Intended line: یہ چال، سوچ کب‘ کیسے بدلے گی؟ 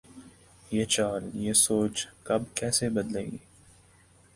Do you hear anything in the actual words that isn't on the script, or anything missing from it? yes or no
yes